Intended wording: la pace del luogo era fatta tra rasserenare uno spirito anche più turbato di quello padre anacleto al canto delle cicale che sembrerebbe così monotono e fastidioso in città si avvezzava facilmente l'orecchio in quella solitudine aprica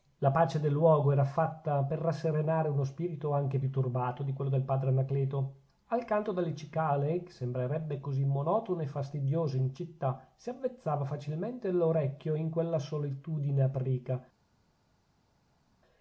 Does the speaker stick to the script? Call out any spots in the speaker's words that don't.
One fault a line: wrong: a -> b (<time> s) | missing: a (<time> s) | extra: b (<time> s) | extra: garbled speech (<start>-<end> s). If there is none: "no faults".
wrong: tra -> per (1.8 s)
extra: del (4.5 s)